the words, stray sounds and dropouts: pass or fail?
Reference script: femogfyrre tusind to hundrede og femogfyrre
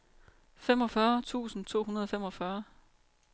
pass